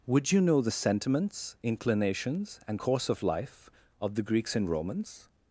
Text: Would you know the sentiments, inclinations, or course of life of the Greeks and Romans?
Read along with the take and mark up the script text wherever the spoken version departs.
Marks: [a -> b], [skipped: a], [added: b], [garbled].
Would you know the sentiments, inclinations, [or -> and] course of life of the Greeks and Romans?